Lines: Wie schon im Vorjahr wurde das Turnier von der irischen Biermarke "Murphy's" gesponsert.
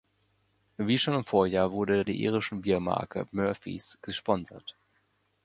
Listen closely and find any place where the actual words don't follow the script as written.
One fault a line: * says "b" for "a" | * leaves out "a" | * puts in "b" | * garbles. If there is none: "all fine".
* leaves out "das Turnier von"